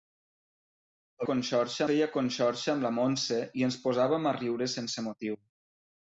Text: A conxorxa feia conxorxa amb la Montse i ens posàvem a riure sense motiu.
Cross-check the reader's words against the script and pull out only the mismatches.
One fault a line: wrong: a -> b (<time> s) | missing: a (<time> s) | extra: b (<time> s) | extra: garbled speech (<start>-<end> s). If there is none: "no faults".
no faults